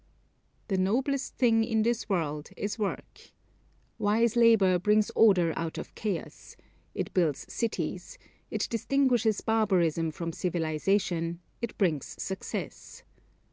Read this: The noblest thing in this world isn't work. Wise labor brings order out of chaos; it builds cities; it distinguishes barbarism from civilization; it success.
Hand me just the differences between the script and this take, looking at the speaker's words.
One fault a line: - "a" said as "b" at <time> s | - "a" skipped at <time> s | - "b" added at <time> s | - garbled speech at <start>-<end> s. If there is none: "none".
- "isn't" said as "is" at 2.6 s
- "brings" added at 11.8 s